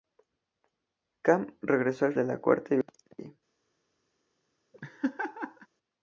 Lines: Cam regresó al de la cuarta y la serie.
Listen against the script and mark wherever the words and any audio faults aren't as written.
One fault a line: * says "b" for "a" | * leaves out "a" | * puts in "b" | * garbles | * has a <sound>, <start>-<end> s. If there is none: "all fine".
* has a laugh, 4.7-5.7 s